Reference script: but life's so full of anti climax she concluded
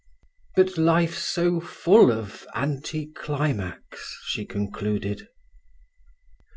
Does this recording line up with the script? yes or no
yes